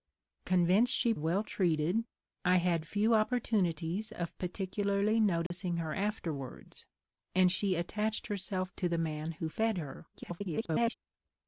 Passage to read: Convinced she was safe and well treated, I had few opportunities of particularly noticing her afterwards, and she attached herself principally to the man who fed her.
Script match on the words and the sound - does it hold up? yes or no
no